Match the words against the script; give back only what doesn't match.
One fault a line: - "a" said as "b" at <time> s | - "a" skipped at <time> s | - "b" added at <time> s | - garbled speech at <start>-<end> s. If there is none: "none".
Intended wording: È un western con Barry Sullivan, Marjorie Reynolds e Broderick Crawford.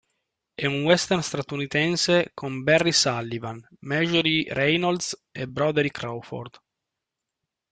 - "statunitense" added at 1.2 s